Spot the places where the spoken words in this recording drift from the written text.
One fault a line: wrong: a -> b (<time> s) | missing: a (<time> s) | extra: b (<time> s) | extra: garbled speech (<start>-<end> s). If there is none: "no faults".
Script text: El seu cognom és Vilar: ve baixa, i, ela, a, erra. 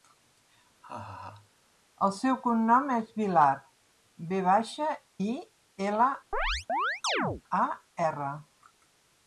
no faults